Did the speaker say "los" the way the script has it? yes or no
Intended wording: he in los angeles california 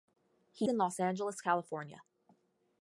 yes